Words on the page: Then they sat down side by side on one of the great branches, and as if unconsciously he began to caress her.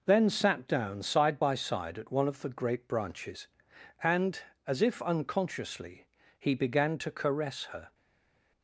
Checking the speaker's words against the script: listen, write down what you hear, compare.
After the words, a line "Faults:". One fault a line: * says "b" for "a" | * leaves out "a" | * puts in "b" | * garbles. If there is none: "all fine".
Then sat down side by side at one of the great branches, and as if unconsciously he began to caress her.
Faults:
* leaves out "they"
* says "at" for "on"